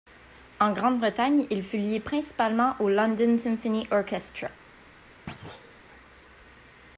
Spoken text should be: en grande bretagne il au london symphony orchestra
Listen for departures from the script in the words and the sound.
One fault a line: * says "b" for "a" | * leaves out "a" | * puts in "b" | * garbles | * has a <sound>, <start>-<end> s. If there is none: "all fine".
* puts in "fut lié principalement"
* has a thud, 5.3-5.8 s